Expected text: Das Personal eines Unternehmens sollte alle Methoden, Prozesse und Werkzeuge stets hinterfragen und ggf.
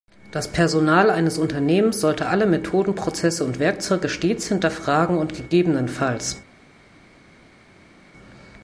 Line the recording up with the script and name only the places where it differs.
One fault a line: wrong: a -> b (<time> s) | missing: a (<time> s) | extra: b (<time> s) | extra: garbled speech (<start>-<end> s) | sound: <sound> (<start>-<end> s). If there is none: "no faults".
no faults